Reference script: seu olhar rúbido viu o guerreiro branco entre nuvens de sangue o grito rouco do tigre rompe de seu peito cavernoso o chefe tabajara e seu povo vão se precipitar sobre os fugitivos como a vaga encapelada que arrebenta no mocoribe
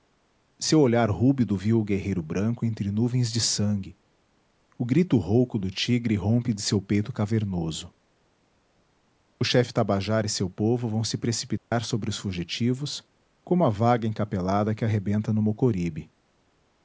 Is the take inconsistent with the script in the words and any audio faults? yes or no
yes